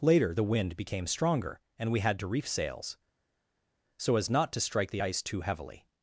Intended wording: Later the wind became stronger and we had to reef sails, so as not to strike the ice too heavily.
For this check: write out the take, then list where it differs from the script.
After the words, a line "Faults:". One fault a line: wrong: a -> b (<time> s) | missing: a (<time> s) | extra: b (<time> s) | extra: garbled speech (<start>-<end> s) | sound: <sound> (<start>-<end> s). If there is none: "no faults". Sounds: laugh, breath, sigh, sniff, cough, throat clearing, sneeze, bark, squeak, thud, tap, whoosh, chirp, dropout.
Later the wind became stronger and we had to reef sails, so as not to strike the ice too heavily.
Faults:
no faults